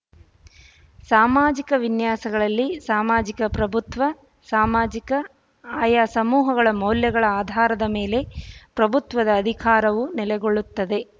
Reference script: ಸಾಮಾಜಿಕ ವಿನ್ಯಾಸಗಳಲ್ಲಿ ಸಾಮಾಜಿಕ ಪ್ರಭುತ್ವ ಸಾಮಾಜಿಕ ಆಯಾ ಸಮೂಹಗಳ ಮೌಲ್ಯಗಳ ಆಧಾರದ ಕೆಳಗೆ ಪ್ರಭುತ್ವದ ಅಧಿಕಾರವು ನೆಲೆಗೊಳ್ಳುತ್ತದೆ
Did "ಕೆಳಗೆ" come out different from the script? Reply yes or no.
yes